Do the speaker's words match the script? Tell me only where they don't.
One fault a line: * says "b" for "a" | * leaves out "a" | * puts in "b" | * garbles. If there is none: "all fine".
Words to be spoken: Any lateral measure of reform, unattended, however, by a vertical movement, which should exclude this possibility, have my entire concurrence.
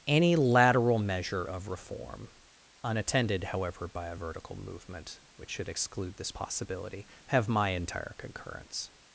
all fine